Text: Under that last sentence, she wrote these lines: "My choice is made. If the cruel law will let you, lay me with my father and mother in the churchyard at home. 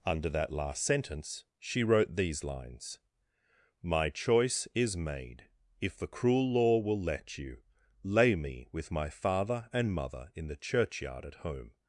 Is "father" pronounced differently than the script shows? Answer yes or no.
no